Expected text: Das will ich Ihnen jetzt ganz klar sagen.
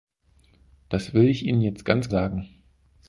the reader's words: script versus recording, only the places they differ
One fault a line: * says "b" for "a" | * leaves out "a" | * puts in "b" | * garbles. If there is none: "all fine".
* leaves out "klar"